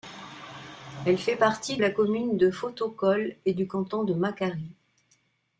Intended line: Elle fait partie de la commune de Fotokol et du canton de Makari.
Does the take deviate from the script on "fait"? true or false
false